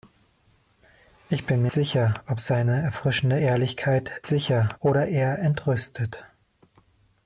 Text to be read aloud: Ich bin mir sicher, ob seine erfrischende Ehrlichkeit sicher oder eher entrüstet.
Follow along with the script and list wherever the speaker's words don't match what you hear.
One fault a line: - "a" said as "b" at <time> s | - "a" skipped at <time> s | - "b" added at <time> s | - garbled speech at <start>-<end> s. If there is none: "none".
none